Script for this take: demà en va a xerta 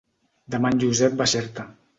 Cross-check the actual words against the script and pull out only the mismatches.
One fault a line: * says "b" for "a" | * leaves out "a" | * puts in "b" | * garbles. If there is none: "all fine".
* puts in "josep"